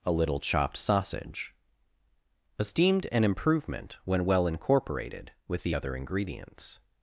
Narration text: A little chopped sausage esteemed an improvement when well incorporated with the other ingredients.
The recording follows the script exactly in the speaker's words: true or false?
true